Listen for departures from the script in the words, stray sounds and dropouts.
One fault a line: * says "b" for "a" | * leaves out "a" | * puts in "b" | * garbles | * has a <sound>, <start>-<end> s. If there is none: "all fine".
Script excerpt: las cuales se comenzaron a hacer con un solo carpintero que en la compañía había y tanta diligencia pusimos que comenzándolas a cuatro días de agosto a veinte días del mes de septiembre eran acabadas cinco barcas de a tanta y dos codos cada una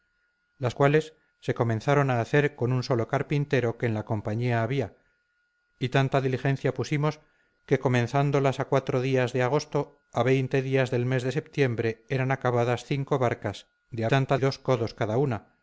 all fine